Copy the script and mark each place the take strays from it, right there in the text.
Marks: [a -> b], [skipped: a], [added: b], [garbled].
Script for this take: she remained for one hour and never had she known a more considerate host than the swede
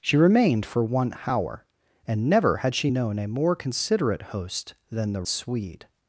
she remained for one hour and never had she known a more considerate host than the swede